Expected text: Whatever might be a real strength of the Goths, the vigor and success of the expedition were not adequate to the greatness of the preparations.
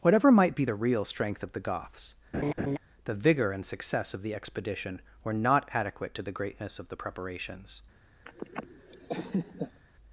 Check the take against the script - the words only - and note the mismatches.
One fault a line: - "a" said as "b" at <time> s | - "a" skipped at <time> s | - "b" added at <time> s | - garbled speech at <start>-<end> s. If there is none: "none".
- "a" said as "the" at 0.6 s